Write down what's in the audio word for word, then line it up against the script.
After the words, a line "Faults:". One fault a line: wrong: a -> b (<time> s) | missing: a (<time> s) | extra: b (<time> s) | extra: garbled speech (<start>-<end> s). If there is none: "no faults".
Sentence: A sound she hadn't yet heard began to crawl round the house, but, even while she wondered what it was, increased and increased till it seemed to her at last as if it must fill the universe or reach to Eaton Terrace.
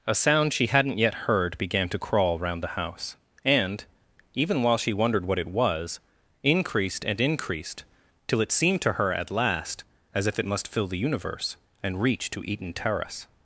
A sound she hadn't yet heard began to crawl round the house, and, even while she wondered what it was, increased and increased till it seemed to her at last as if it must fill the universe and reach to Eaton Terrace.
Faults:
wrong: but -> and (3.5 s)
wrong: or -> and (11.8 s)